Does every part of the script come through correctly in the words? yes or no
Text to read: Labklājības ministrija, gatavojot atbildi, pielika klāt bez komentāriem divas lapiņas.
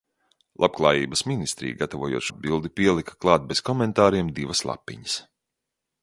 yes